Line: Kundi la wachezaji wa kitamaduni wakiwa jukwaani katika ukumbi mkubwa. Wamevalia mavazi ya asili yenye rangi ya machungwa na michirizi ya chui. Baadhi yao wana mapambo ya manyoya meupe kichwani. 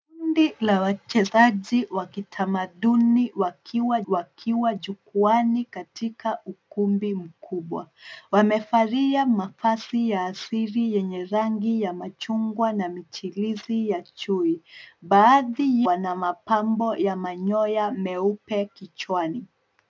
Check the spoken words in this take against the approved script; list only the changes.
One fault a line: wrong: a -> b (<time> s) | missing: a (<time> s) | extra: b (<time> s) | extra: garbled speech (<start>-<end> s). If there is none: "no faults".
extra: wakiwa (4.1 s)
missing: yao (15.8 s)